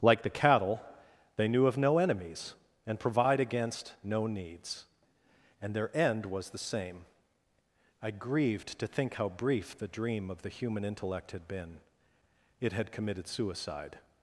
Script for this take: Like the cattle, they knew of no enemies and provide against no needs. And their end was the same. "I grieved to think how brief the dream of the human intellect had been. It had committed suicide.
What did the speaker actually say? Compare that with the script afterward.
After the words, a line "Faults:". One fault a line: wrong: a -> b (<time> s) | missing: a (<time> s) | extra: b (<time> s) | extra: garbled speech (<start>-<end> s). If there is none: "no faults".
Like the cattle, they knew of no enemies and provide against no needs. And their end was the same. "I grieved to think how brief the dream of the human intellect had been. It had committed suicide.
Faults:
no faults